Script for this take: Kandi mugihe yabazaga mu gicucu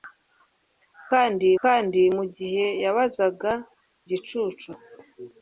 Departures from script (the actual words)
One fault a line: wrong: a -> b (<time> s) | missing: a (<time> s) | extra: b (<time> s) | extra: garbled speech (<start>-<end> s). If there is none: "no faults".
extra: kandi (1.6 s)
missing: mu (3.5 s)